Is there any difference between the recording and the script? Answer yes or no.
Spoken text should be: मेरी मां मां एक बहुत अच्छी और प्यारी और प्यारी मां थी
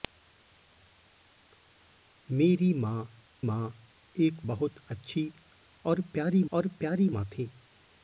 no